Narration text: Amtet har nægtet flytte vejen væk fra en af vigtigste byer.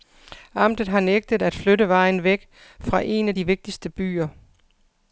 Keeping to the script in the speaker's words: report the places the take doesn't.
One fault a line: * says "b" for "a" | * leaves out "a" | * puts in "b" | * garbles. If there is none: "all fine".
* puts in "at"
* puts in "de"